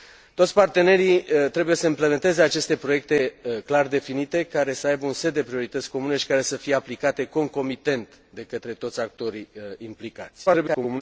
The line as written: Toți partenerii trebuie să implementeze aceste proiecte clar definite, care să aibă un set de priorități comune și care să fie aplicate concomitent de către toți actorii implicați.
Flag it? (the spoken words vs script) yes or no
yes